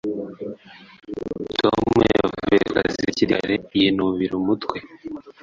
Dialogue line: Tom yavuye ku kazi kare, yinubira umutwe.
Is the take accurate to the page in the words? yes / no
no